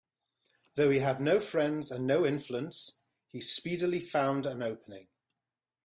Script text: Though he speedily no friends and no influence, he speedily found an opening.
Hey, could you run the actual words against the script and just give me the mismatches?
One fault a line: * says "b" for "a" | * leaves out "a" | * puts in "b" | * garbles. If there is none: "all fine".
* says "had" for "speedily"